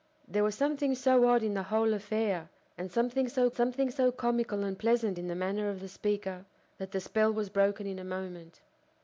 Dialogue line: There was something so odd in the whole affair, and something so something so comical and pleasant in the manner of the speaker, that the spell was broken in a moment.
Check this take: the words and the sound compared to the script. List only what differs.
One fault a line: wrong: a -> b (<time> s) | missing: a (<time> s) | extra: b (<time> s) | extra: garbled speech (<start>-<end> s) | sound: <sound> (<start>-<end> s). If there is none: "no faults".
no faults